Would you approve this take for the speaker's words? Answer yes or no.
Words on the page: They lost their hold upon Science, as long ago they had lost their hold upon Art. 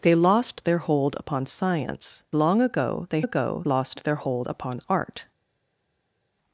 no